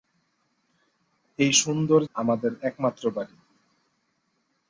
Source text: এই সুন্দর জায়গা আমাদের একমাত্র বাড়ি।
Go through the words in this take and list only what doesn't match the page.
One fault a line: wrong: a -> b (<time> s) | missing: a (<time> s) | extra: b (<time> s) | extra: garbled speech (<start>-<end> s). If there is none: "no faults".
missing: জায়গা (2.0 s)